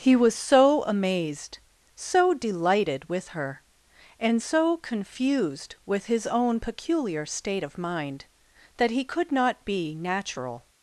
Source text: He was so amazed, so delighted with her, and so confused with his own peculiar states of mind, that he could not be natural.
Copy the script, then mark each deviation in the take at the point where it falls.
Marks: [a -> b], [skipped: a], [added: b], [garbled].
He was so amazed, so delighted with her, and so confused with his own peculiar [states -> state] of mind, that he could not be natural.